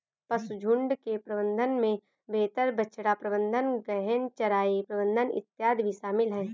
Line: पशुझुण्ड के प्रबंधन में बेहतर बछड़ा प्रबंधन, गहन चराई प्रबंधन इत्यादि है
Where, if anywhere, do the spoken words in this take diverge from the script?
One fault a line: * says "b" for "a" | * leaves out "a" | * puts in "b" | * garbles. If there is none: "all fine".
* puts in "भी शामिल"